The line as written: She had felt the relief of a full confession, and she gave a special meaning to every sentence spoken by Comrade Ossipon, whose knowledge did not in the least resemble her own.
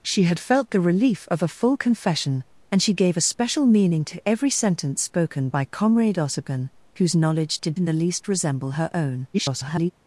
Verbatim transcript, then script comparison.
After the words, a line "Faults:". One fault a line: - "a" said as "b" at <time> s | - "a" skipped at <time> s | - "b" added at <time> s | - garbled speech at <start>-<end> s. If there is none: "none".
She had felt the relief of a full confession, and she gave a special meaning to every sentence spoken by Comrade Ossipon, whose knowledge did in the least resemble her own. [garbled]
Faults:
- "not" skipped at 7.8 s
- garbled speech at 9.3-9.9 s